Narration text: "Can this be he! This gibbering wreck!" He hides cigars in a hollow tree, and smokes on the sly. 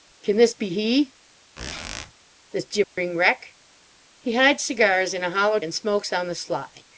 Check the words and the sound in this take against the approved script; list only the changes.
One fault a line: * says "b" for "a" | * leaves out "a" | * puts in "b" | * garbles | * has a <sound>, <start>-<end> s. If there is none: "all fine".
* has a squeak, 1.6-2.1 s
* has a dropout, 2.8-3.0 s
* leaves out "tree"